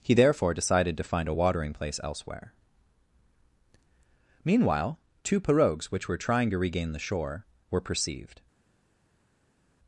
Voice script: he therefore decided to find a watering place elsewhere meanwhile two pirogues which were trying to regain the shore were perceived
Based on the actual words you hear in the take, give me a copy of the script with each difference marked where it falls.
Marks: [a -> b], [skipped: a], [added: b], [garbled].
he therefore decided to find a watering place elsewhere meanwhile two pirogues which were trying to regain the shore were perceived